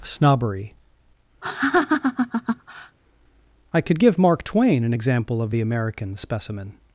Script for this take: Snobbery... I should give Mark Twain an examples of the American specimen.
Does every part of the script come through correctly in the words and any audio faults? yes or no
no